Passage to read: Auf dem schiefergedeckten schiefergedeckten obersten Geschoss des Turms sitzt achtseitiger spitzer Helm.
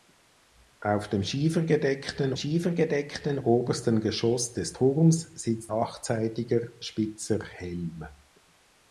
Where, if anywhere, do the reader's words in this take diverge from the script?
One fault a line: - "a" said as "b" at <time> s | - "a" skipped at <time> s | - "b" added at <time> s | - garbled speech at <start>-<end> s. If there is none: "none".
none